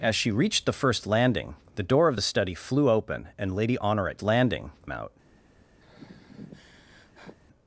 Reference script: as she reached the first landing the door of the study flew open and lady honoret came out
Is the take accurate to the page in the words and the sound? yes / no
no